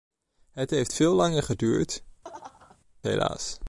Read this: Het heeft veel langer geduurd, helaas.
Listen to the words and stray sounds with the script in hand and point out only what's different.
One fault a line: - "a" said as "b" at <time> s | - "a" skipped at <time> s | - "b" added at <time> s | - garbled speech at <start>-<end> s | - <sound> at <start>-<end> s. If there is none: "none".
- laugh at 2.2-2.8 s